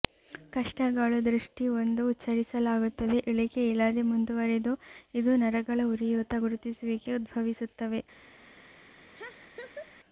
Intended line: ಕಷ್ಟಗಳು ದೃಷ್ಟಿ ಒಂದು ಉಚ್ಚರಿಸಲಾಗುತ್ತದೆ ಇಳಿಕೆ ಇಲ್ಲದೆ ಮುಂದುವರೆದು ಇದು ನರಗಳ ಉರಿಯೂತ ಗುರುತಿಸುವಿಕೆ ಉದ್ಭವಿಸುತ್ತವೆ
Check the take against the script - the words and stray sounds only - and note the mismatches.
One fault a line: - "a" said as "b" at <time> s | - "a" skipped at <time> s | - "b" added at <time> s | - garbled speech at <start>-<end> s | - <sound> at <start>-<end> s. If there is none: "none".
- laugh at 9.1-9.9 s